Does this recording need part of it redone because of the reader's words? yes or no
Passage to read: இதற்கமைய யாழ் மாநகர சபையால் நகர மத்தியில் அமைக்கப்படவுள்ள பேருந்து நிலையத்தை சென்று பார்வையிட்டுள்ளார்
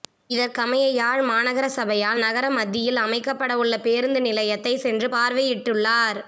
no